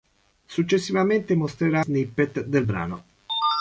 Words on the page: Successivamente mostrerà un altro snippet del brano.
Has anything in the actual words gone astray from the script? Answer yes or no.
yes